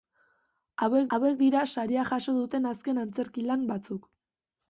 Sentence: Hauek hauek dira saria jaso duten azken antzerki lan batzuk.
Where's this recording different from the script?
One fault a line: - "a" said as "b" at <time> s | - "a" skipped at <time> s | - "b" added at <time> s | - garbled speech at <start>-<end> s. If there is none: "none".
none